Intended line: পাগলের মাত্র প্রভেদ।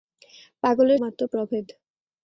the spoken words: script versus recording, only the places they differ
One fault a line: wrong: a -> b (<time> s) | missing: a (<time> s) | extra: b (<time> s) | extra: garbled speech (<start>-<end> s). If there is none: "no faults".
no faults